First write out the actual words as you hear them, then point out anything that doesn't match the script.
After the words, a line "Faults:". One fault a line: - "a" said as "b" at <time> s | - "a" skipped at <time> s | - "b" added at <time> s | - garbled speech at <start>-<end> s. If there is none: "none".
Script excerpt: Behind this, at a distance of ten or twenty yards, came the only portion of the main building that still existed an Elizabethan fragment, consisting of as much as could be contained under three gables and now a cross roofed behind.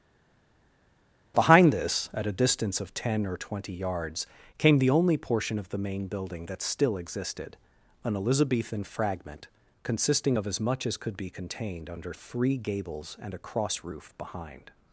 Behind this, at a distance of ten or twenty yards, came the only portion of the main building that still existed an Elizabethan fragment, consisting of as much as could be contained under three gables and a cross roof behind.
Faults:
- "now" skipped at 13.3 s
- "roofed" said as "roof" at 13.8 s